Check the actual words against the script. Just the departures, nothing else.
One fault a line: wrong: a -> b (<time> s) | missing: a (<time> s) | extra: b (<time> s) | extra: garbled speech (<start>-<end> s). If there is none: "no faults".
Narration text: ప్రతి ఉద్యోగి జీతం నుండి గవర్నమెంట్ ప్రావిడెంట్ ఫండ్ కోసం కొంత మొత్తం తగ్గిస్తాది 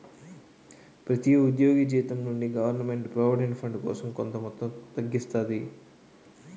no faults